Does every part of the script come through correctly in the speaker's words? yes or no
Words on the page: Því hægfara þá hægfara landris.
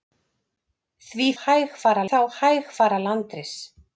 yes